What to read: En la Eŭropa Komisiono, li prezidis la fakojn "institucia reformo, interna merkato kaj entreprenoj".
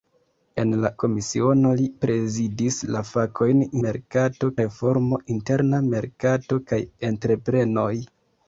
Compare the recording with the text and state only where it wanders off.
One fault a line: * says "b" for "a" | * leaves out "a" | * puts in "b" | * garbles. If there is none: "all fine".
* leaves out "Eŭropa"
* says "merkato" for "institucia"